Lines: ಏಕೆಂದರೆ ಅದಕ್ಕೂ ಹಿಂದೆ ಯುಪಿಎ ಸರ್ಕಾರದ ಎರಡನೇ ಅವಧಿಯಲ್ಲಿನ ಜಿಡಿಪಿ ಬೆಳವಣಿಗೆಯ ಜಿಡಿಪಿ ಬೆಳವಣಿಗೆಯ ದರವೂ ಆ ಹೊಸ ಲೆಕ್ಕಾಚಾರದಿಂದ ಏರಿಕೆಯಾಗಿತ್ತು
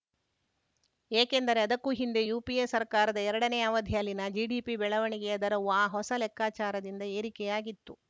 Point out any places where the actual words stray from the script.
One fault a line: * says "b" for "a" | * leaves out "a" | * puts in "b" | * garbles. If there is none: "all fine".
* leaves out "ಜಿಡಿಪಿ ಬೆಳವಣಿಗೆಯ"